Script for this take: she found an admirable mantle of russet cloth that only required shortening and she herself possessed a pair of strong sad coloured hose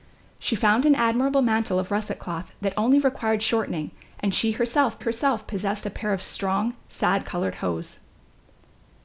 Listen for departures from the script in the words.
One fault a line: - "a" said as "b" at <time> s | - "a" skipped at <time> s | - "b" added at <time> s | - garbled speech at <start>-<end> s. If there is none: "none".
- "herself" added at 5.0 s